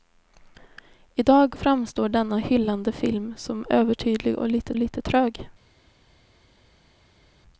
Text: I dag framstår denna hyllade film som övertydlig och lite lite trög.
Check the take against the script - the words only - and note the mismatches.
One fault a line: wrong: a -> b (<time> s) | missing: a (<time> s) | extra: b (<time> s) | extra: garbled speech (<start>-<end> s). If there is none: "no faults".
no faults